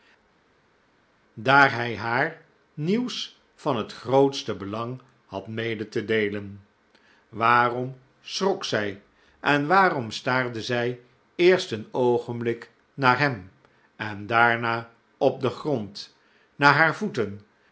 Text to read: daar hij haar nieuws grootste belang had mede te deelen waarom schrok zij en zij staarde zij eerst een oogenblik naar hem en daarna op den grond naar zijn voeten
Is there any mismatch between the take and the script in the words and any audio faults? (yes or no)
yes